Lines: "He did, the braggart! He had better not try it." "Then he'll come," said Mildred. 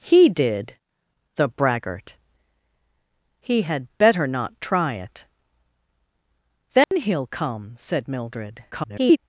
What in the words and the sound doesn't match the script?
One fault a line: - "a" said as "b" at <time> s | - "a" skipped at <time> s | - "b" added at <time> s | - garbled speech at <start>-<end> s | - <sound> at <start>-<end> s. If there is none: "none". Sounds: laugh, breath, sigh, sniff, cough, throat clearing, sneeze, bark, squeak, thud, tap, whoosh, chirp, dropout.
- dropout at 6.8-6.9 s
- garbled speech at 8.7-9.2 s